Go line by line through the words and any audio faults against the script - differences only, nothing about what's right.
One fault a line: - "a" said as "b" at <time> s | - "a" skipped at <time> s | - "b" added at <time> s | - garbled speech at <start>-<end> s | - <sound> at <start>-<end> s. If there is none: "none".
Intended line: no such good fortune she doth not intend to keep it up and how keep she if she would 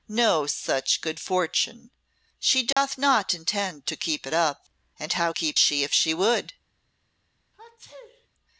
- dropout at 2.7-2.8 s
- sneeze at 7.5-8.3 s